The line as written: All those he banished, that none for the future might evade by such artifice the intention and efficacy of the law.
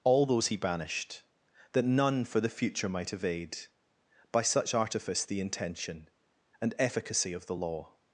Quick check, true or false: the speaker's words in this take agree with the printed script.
true